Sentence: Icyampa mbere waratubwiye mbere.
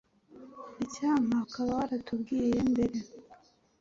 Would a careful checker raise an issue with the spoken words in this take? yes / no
yes